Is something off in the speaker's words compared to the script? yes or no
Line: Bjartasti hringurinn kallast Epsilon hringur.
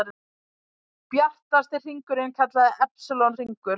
no